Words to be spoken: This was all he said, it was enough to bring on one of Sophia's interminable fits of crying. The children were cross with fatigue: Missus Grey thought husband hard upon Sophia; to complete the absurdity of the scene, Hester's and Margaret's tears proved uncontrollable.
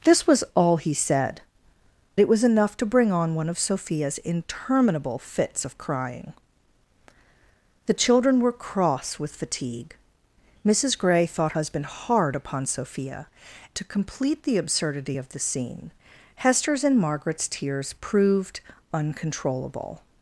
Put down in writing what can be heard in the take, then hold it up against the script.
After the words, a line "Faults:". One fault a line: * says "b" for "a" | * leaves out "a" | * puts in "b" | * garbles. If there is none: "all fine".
This was all he said, it was enough to bring on one of Sophia's interminable fits of crying. The children were cross with fatigue: Missus Grey thought husband hard upon Sophia; to complete the absurdity of the scene, Hester's and Margaret's tears proved uncontrollable.
Faults:
all fine